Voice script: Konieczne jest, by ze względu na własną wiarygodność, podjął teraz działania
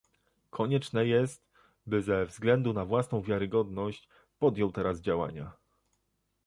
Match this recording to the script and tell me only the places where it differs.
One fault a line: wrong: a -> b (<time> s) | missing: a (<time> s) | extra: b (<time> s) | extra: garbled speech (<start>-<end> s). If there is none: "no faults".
no faults